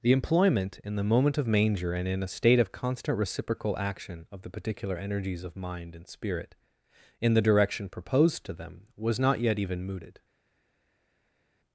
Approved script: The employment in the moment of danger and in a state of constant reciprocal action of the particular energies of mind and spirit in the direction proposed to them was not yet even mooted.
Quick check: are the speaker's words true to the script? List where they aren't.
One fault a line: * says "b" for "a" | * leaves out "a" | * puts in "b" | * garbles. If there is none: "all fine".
* says "manger" for "danger"